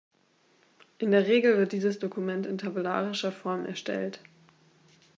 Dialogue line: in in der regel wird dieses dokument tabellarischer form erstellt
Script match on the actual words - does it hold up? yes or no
no